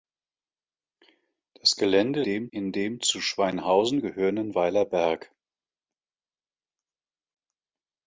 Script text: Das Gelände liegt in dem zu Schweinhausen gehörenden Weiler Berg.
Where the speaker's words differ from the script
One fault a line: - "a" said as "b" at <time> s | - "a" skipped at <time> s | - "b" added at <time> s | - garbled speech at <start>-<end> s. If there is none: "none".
- "liegt" said as "dem" at 2.2 s